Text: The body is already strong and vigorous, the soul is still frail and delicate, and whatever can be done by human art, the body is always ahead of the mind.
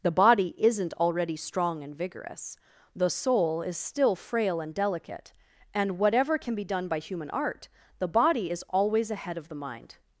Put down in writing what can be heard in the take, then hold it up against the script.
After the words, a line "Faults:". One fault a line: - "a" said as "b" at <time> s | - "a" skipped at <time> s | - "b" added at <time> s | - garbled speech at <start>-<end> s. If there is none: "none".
The body isn't already strong and vigorous, the soul is still frail and delicate, and whatever can be done by human art, the body is always ahead of the mind.
Faults:
- "is" said as "isn't" at 0.6 s